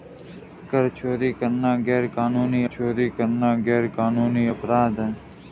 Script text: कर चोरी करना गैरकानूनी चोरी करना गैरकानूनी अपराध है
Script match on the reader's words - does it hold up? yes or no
yes